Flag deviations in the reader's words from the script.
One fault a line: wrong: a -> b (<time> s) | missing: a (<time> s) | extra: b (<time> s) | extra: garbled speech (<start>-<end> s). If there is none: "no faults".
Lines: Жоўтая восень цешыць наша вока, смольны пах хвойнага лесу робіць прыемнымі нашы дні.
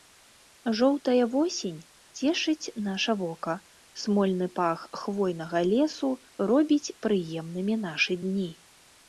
no faults